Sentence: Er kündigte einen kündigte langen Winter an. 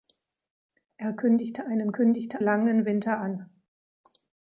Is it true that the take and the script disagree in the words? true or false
false